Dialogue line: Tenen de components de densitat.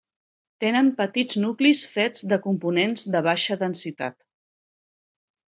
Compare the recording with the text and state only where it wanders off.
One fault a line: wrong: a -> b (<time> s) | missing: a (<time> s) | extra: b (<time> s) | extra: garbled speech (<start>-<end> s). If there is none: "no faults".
extra: petits nuclis fets (1.0 s)
extra: baixa (3.3 s)